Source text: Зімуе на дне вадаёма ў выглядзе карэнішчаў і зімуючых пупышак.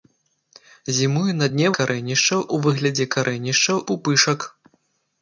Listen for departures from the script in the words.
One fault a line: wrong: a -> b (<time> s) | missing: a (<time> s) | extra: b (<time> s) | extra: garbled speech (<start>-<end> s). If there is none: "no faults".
wrong: вадаёма -> карэнішчаў (1.8 s)
missing: і зімуючых (3.8 s)